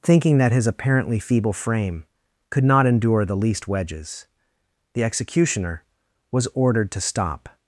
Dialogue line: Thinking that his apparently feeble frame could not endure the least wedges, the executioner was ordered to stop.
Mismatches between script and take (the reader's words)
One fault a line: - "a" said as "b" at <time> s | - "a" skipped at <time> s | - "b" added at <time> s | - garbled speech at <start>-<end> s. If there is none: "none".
none